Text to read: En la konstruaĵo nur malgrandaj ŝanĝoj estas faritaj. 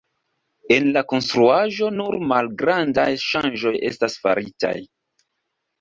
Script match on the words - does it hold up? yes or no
yes